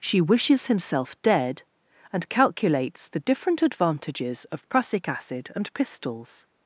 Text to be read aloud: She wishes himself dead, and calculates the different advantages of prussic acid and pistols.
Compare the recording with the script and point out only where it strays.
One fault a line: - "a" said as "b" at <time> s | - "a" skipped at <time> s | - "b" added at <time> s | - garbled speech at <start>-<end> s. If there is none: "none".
none